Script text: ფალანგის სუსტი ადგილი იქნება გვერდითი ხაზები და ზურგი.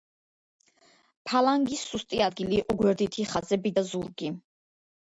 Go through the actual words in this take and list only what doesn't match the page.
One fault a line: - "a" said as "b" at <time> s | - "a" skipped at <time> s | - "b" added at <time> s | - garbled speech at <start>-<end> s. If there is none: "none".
- "იქნება" said as "იყო" at 2.6 s